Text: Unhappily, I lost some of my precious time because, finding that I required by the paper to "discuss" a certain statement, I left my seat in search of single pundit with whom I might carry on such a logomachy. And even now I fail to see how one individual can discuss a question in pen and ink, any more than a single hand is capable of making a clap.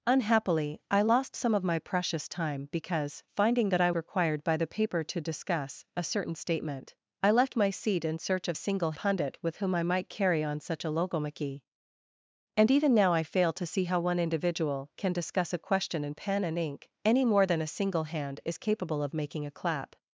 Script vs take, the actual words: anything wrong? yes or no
no